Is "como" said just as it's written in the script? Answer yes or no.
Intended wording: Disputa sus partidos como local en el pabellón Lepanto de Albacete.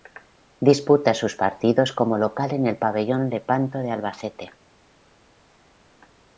yes